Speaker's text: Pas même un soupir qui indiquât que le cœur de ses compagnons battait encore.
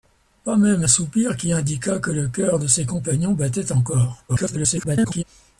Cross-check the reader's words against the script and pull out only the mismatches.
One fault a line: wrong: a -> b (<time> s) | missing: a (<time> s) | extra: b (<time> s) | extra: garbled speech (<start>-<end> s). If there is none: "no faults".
missing: un (0.8 s)
extra: garbled speech (4.3-5.2 s)